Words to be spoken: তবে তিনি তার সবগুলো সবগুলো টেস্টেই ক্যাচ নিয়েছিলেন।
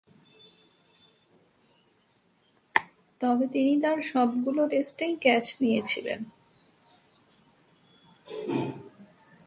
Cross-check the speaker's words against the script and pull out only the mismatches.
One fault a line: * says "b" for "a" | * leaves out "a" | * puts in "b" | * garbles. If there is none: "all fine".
* leaves out "সবগুলো"